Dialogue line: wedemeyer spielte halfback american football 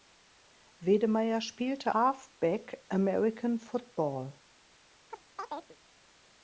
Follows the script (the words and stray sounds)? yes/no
no